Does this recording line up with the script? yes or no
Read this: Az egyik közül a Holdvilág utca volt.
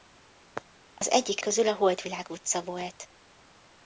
yes